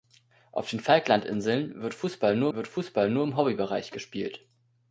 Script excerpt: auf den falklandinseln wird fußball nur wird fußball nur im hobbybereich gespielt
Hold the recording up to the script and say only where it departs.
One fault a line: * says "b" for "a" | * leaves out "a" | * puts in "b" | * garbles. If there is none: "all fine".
all fine